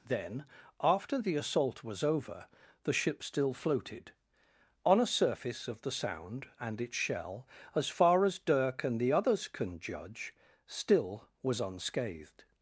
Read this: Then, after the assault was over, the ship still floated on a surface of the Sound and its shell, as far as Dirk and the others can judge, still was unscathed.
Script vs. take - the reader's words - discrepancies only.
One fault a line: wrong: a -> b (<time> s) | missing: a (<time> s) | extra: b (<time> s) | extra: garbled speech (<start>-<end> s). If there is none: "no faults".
no faults